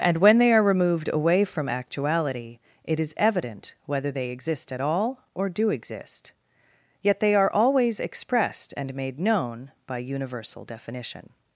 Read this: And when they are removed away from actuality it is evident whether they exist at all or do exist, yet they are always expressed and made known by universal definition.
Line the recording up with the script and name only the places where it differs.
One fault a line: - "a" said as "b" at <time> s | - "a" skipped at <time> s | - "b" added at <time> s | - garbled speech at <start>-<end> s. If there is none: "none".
none